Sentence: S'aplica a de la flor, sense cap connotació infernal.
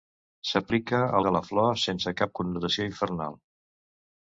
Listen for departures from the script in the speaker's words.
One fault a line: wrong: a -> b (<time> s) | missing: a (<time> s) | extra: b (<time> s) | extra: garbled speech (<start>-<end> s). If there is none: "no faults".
no faults